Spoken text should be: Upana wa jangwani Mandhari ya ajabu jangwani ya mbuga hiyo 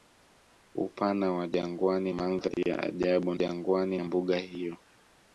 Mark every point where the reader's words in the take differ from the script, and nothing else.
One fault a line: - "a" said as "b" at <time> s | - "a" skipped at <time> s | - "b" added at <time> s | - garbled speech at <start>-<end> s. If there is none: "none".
none